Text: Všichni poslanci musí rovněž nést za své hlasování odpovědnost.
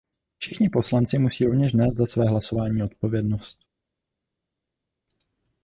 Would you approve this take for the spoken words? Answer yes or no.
yes